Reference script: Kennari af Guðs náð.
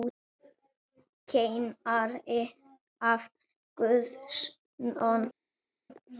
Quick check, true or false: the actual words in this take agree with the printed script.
true